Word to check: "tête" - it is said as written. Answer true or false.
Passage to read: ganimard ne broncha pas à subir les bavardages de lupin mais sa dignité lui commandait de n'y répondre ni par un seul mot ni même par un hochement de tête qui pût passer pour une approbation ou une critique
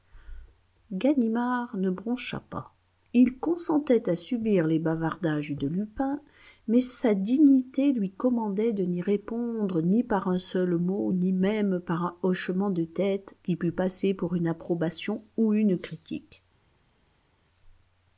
true